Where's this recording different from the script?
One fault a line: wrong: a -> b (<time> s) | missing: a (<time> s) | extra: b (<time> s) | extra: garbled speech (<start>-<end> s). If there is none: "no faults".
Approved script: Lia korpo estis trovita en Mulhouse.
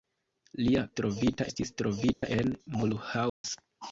wrong: korpo -> trovita (1.0 s)